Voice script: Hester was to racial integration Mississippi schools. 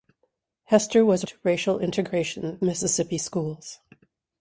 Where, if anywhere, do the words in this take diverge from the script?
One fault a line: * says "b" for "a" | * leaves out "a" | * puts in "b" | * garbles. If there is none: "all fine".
all fine